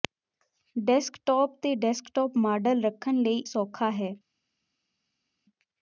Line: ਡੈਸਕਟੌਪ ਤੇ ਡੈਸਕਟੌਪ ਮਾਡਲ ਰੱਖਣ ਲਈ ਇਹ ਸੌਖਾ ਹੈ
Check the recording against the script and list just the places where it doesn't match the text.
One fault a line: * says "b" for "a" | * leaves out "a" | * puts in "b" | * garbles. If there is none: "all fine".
* leaves out "ਇਹ"